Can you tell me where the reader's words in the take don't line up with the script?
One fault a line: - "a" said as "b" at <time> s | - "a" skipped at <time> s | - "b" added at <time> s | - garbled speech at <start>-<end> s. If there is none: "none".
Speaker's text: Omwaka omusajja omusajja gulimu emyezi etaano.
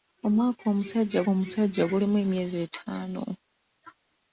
none